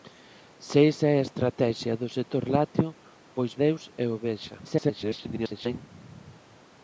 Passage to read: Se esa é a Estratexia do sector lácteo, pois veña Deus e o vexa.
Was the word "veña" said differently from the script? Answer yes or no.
yes